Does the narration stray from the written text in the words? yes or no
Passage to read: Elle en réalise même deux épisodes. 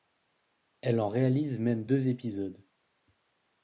no